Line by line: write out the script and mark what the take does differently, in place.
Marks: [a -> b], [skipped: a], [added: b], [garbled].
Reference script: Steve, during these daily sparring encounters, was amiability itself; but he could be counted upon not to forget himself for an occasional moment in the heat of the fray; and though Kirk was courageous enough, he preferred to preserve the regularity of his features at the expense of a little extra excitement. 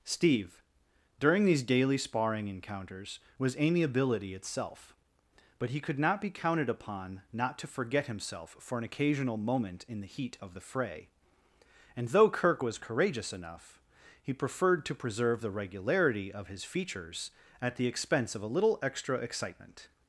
Steve, during these daily sparring encounters, was amiability itself; but he could [added: not] be counted upon not to forget himself for an occasional moment in the heat of the fray; and though Kirk was courageous enough, he preferred to preserve the regularity of his features at the expense of a little extra excitement.